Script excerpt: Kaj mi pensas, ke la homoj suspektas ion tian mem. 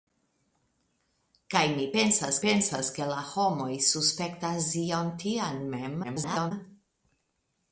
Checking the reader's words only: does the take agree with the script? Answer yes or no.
no